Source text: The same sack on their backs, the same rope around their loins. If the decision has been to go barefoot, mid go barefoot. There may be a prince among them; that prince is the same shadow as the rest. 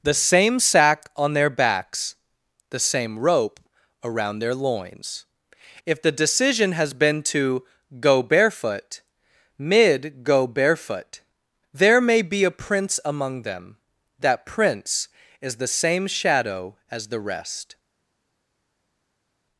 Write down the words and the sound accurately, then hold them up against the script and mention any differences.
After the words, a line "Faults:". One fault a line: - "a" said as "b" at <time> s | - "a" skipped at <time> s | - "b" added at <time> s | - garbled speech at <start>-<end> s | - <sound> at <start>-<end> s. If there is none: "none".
The same sack on their backs, the same rope around their loins. If the decision has been to go barefoot, mid go barefoot. There may be a prince among them; that prince is the same shadow as the rest.
Faults:
none